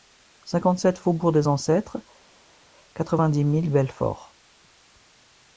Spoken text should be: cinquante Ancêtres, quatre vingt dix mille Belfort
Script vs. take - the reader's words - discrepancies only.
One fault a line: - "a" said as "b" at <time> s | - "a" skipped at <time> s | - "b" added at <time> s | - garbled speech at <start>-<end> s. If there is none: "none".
- "sept faubourg des" added at 0.8 s